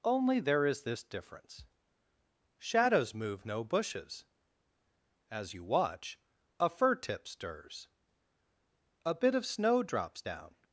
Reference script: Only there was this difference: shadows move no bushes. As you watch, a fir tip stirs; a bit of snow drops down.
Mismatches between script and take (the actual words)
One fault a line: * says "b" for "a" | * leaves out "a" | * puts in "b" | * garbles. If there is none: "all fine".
* says "is" for "was"